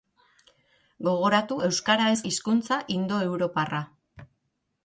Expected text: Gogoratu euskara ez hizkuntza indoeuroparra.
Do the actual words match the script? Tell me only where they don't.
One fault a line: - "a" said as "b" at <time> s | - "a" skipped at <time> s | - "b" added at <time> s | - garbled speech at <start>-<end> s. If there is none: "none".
none